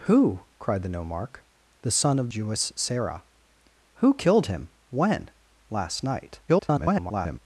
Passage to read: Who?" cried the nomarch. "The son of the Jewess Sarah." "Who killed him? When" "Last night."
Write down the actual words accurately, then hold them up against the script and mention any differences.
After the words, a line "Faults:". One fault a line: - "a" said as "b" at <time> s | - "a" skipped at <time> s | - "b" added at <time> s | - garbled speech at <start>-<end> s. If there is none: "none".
Who?" cried the nomarch. "The son of Jewess Sarah." "Who killed him? When" "Last night." [garbled]
Faults:
- "the" skipped at 2.3 s
- garbled speech at 6.5-7.4 s